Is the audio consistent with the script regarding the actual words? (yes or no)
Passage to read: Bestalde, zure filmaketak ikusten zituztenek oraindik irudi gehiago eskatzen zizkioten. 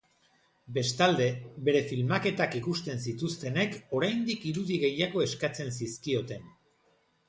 no